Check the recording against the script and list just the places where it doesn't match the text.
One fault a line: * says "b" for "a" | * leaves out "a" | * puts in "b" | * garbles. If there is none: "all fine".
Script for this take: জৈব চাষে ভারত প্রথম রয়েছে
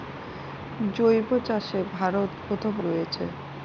all fine